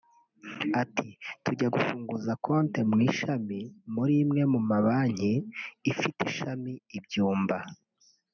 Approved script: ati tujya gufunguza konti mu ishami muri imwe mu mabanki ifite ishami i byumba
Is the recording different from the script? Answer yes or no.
no